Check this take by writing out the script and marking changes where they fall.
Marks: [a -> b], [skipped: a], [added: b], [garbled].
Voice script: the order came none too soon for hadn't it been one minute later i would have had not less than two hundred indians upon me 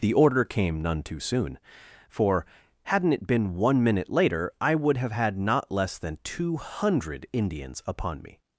the order came none too soon for hadn't it been one minute later i would have had not less than two hundred indians upon me